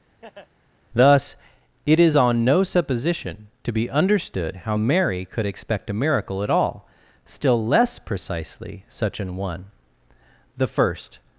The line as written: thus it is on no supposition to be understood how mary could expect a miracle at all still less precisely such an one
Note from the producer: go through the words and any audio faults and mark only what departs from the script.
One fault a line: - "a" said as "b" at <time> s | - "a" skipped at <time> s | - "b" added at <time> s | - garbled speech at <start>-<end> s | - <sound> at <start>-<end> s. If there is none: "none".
- laugh at 0.2-0.5 s
- "the first" added at 10.6 s